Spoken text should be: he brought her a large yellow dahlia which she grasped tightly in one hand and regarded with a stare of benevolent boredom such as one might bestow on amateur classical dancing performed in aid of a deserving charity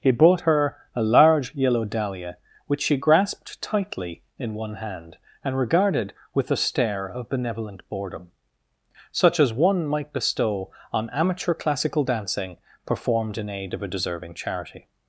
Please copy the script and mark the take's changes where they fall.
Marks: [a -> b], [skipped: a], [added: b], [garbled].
he brought her a large yellow dahlia which she grasped tightly in one hand and regarded with a stare of benevolent boredom such as one might bestow on amateur classical dancing performed in aid of a deserving charity